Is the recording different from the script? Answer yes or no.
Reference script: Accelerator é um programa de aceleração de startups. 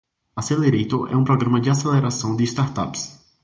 no